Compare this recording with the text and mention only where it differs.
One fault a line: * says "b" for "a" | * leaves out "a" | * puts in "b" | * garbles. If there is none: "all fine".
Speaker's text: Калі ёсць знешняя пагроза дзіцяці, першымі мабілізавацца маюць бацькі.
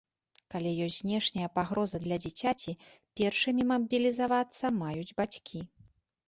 * puts in "для"